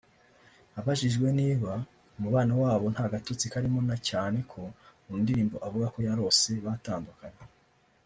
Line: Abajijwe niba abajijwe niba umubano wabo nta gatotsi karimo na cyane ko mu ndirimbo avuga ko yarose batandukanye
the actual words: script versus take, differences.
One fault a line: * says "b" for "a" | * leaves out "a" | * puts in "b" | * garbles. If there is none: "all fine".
* leaves out "abajijwe niba"